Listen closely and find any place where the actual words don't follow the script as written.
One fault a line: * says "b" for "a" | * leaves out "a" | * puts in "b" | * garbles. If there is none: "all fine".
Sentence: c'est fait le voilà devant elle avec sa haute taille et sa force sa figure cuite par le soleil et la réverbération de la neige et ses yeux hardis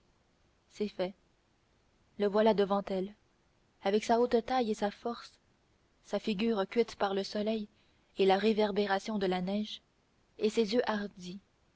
all fine